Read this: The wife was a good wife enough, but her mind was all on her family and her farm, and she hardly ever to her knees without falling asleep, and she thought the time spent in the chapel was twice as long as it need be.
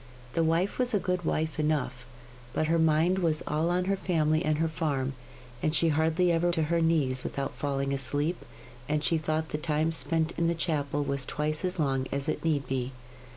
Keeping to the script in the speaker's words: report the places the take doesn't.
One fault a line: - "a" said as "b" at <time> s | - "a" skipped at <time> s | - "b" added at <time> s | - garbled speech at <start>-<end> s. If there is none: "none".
none